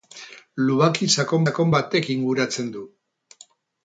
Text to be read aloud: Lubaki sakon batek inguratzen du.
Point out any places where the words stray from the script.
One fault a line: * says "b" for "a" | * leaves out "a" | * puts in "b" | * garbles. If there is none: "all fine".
* puts in "sakon"